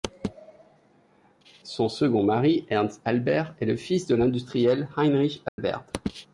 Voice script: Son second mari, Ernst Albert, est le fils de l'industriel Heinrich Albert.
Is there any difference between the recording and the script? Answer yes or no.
no